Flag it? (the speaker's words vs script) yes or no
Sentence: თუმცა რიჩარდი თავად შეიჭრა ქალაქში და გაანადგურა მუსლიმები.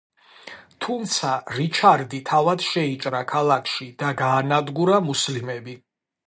no